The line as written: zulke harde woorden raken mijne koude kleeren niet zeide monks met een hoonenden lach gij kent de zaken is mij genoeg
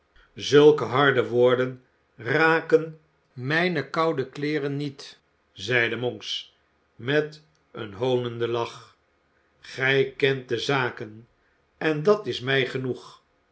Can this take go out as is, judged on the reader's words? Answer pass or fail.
fail